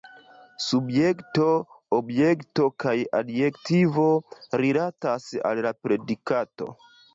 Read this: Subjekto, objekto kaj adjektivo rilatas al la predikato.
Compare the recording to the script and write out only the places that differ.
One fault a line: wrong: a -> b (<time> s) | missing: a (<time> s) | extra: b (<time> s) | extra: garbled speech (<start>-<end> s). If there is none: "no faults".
no faults